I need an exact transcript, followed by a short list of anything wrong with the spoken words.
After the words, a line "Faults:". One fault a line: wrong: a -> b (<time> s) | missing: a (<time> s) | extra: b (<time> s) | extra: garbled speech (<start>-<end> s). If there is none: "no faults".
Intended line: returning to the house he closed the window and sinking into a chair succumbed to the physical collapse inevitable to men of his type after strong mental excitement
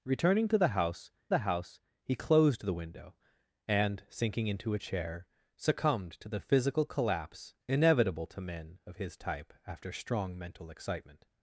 returning to the house the house he closed the window and sinking into a chair succumbed to the physical collapse inevitable to men of his type after strong mental excitement
Faults:
extra: the house (1.3 s)